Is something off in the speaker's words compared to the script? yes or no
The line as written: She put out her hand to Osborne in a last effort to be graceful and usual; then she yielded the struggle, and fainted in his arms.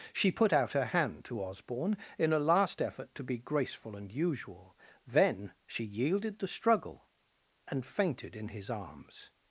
no